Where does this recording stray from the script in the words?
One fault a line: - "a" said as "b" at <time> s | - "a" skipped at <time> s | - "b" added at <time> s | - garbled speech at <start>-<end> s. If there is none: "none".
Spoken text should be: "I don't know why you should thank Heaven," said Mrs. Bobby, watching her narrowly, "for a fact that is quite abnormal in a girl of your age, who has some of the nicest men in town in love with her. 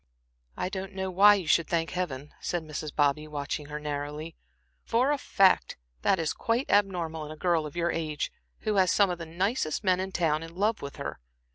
none